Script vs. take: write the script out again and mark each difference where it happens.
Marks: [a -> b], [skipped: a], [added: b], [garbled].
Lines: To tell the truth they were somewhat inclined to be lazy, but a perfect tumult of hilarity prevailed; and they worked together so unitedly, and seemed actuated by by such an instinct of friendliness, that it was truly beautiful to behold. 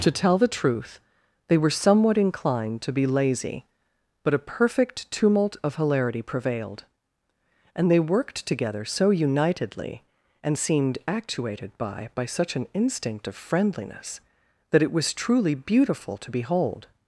To tell the truth they were somewhat inclined to be lazy, but a perfect tumult of hilarity prevailed; and they worked together so unitedly, and seemed actuated by by such an instinct of friendliness, that it was truly beautiful to behold.